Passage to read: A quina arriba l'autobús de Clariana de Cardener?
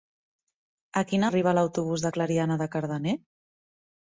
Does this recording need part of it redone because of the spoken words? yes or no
no